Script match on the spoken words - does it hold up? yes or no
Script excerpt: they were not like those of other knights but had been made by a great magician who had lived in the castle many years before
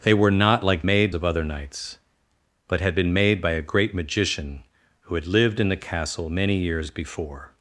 no